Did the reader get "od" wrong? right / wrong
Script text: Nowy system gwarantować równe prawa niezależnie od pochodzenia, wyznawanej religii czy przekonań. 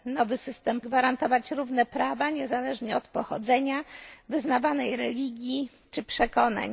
right